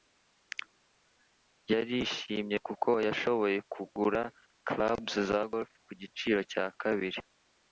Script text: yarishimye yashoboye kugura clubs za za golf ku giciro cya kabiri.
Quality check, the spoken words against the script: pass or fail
fail